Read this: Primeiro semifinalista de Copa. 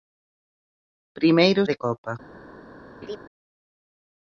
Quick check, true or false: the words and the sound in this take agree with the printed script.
false